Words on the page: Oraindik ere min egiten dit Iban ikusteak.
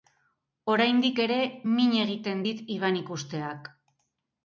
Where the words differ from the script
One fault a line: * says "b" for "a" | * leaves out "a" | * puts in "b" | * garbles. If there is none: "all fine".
all fine